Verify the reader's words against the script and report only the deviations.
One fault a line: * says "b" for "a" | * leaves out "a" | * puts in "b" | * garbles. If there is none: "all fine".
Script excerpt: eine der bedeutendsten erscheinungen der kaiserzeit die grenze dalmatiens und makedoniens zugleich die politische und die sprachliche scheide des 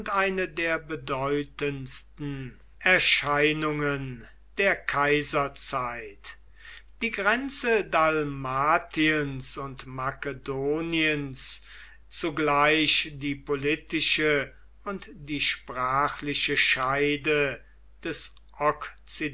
all fine